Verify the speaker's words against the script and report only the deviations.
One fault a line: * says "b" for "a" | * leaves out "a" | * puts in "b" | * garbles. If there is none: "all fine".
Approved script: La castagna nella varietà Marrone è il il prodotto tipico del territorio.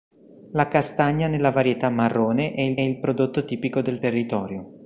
all fine